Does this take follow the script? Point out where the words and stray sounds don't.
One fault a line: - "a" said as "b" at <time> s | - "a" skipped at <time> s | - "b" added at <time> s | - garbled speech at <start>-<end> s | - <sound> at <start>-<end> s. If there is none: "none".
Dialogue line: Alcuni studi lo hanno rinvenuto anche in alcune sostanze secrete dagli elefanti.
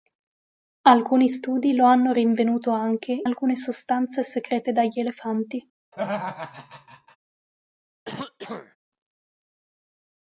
- "in" skipped at 3.2 s
- laugh at 5.9-7.2 s
- throat clearing at 8.0-8.8 s